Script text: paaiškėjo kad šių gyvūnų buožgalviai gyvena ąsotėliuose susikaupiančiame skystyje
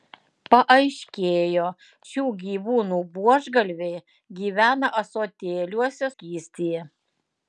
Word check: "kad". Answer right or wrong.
wrong